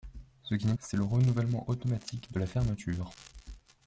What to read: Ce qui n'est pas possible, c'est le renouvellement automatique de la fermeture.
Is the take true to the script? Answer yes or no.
no